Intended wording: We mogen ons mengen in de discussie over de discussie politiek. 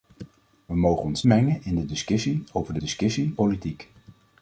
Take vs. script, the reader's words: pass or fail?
pass